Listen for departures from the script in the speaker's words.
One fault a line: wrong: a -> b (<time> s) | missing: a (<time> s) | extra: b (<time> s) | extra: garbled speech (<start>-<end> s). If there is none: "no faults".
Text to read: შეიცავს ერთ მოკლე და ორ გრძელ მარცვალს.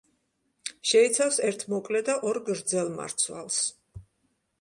no faults